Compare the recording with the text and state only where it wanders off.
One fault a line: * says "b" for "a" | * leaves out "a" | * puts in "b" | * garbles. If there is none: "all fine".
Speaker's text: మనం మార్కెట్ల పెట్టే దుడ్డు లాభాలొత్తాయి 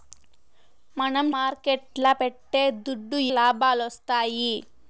all fine